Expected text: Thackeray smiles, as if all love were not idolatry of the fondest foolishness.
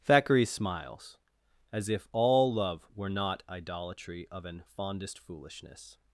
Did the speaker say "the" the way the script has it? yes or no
no